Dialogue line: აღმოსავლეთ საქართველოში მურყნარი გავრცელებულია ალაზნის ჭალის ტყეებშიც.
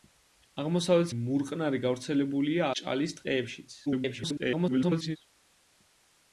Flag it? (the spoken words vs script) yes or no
yes